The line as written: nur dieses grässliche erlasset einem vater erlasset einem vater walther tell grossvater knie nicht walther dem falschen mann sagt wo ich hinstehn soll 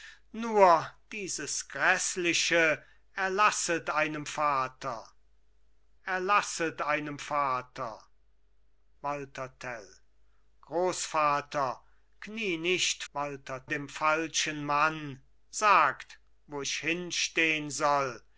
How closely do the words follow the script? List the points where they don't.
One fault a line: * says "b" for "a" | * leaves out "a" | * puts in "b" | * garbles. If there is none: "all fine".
all fine